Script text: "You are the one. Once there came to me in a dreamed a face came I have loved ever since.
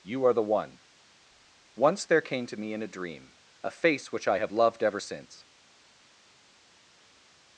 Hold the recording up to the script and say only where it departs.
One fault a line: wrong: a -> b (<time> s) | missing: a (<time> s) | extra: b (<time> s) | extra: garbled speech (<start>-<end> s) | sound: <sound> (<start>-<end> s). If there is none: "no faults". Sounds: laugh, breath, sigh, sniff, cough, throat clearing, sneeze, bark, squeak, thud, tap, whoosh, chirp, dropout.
wrong: dreamed -> dream (2.9 s)
wrong: came -> which (4.1 s)